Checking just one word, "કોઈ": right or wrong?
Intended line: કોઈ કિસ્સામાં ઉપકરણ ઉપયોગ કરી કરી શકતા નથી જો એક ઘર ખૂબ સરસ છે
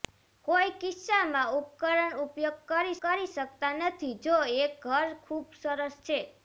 right